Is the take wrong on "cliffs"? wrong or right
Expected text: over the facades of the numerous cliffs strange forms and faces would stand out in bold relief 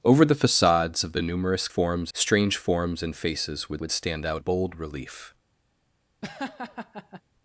wrong